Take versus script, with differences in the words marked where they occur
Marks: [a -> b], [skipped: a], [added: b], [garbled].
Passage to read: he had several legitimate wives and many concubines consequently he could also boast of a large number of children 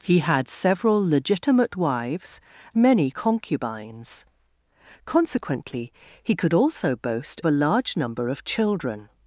he had several legitimate wives [skipped: and] many concubines consequently he could also boast [skipped: of] a large number of children